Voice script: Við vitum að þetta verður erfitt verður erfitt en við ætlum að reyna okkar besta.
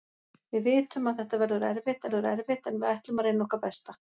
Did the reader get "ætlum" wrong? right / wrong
right